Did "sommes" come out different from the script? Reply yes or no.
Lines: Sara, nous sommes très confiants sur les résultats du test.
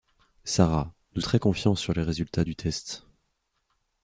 yes